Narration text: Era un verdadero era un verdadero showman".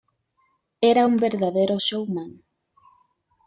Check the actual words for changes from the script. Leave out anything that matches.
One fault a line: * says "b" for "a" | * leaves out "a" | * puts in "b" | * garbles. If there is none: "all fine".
* leaves out "era un verdadero"